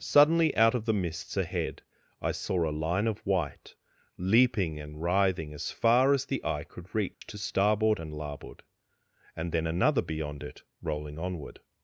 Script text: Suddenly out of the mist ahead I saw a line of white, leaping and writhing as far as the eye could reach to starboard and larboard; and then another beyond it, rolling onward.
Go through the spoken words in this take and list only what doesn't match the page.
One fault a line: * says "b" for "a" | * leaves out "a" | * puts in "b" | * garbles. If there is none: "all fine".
* says "mists" for "mist"